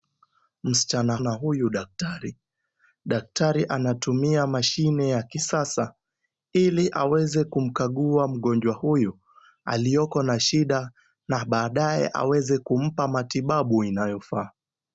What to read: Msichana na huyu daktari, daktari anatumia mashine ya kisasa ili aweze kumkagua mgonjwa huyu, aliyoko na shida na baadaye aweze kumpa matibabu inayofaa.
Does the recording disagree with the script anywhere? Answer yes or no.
no